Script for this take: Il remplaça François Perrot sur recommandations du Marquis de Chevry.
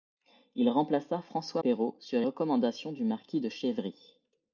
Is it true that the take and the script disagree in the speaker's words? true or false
false